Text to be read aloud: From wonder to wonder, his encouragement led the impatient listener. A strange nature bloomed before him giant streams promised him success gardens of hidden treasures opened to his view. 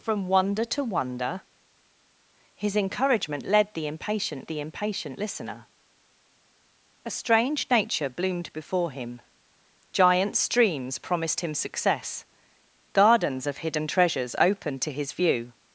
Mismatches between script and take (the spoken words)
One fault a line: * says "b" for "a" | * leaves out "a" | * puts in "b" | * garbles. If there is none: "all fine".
* puts in "the impatient"